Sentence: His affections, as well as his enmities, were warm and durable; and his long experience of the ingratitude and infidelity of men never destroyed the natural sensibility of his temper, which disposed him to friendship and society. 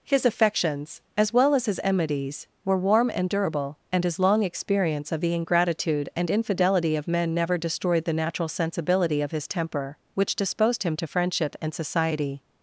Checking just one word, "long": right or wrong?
right